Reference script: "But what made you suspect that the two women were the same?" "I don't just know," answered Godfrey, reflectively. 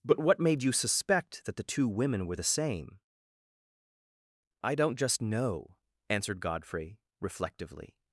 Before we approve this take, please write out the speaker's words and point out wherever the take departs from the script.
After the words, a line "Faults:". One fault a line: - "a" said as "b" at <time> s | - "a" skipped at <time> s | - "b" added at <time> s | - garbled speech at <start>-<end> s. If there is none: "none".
"But what made you suspect that the two women were the same?" "I don't just know," answered Godfrey, reflectively.
Faults:
none